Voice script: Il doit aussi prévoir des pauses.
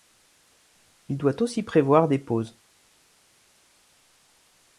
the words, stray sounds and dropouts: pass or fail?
pass